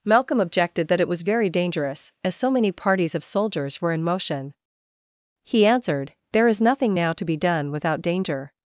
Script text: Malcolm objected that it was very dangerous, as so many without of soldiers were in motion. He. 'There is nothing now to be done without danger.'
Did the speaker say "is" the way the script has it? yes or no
yes